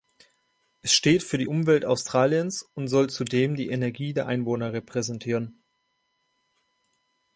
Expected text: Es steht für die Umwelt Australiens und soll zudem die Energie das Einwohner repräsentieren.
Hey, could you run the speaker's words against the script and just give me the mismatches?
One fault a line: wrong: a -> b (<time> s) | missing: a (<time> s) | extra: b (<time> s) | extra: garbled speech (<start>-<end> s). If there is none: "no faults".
wrong: das -> der (4.1 s)